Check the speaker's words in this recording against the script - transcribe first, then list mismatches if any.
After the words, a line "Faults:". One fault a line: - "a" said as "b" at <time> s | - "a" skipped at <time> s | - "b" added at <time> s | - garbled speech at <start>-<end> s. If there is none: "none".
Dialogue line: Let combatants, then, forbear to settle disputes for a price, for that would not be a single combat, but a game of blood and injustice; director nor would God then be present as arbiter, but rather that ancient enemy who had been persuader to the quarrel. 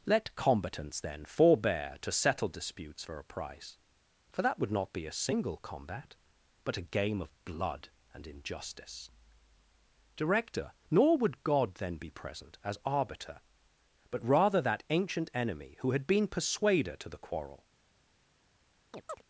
Let combatants, then, forbear to settle disputes for a price, for that would not be a single combat, but a game of blood and injustice; director nor would God then be present as arbiter, but rather that ancient enemy who had been persuader to the quarrel.
Faults:
none